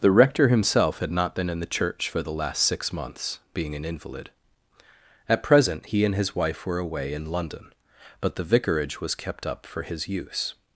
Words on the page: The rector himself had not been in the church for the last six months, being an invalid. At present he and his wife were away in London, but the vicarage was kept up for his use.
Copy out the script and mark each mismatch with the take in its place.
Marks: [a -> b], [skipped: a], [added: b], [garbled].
The rector himself had not been in the church for the last six months, being an invalid. At present he and his wife were away in London, but the vicarage was kept up for his use.